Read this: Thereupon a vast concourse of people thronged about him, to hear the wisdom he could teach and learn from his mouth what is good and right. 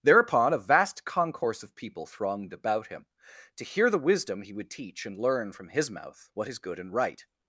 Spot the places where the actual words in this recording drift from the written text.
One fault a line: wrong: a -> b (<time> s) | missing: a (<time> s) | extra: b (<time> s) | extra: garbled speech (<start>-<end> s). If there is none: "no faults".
wrong: could -> would (4.5 s)